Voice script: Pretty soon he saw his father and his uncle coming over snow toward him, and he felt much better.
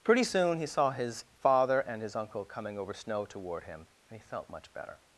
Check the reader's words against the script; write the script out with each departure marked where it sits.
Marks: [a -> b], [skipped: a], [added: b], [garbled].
Pretty soon he saw his father and his uncle coming over snow toward him, and he felt much better.